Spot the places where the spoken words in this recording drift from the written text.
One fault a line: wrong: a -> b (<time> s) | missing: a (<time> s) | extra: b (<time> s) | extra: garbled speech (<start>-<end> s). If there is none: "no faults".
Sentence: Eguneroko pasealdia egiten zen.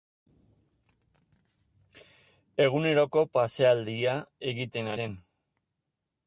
no faults